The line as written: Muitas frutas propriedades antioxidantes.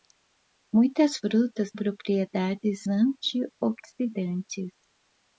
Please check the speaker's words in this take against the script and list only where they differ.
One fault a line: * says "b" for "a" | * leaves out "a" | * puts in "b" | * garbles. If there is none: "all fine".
all fine